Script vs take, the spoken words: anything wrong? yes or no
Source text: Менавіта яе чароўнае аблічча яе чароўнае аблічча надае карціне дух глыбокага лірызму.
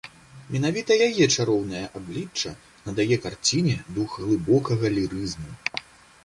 yes